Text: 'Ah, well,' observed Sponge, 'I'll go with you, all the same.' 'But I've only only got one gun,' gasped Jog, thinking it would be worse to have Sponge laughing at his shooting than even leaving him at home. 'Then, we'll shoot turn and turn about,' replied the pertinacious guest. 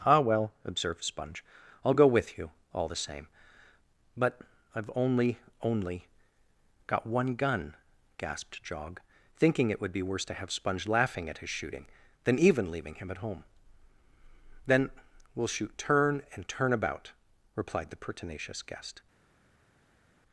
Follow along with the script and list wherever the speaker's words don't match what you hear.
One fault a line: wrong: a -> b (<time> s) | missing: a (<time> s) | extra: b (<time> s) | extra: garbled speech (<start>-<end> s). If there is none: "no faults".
no faults